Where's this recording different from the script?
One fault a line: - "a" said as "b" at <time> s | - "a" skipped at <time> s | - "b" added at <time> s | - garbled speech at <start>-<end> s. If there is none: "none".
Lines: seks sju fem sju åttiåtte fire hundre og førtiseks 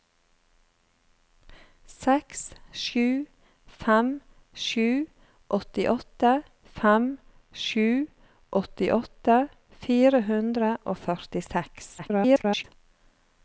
- "fem sju åttiåtte" added at 6.8 s
- garbled speech at 12.0-12.6 s